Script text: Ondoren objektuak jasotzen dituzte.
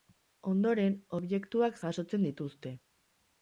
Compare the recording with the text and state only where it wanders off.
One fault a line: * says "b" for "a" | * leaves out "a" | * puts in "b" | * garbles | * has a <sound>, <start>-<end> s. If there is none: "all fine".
all fine